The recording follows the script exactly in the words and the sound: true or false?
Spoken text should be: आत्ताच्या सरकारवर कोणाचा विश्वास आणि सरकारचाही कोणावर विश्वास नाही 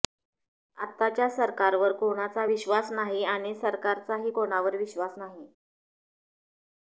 false